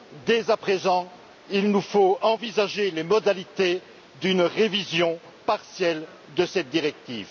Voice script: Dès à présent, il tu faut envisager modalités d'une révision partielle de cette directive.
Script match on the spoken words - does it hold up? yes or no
no